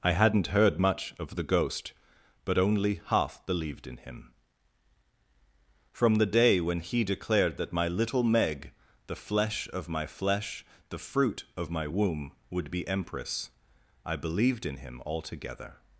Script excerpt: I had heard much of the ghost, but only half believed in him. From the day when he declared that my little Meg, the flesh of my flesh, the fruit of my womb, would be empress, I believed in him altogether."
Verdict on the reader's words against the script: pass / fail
fail